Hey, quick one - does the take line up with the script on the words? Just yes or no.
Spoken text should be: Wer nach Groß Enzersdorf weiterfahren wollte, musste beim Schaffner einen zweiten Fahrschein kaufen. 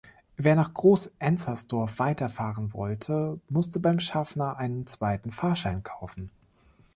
yes